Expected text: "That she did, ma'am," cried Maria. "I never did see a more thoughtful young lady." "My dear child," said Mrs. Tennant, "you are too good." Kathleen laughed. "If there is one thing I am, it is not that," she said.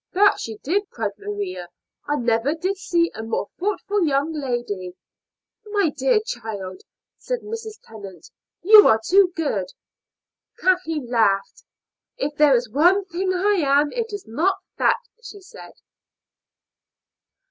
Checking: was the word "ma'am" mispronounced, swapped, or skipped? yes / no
yes